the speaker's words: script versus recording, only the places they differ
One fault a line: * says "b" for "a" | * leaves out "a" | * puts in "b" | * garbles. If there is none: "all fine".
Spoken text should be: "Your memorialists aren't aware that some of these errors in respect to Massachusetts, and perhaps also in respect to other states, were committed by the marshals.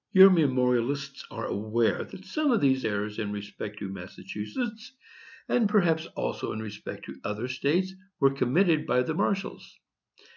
* says "are" for "aren't"